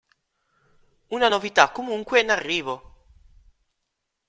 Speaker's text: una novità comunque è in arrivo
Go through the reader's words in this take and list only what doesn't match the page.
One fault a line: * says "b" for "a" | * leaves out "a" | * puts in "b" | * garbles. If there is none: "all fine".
all fine